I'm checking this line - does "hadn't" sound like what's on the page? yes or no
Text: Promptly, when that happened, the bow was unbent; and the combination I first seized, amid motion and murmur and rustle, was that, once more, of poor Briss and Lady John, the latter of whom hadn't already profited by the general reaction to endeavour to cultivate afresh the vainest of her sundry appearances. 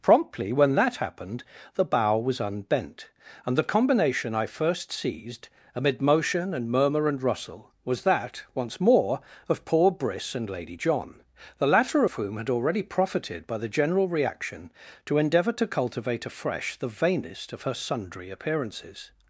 no